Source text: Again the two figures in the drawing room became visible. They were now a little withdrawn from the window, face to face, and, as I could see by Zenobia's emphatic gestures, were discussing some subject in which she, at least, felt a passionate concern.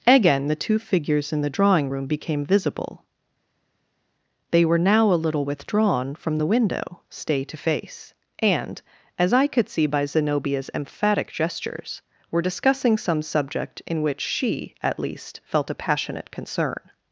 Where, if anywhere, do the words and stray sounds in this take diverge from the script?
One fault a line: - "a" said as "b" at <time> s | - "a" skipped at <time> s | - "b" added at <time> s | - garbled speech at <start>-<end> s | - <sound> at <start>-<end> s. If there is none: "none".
- "face" said as "stay" at 7.1 s